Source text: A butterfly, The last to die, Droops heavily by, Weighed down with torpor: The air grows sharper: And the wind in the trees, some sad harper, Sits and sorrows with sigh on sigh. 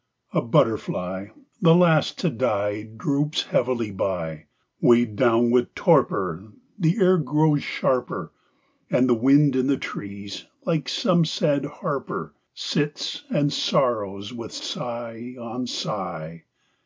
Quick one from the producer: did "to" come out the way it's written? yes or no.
yes